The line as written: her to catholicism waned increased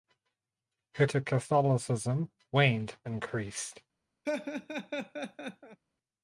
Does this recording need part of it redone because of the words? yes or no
no